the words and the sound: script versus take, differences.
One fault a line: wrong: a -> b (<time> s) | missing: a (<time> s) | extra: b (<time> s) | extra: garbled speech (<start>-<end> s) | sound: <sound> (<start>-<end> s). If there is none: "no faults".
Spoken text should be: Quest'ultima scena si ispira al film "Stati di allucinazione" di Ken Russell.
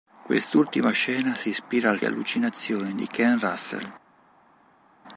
missing: film Stati di (2.0 s)